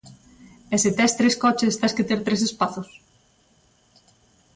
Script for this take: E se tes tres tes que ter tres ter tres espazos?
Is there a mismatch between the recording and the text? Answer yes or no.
yes